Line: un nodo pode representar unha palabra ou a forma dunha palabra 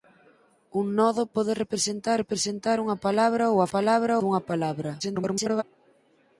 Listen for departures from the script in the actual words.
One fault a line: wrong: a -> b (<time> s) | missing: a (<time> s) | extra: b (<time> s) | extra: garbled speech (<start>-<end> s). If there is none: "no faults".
extra: representar (2.2 s)
wrong: forma -> palabra (3.7 s)
extra: garbled speech (5.0-5.6 s)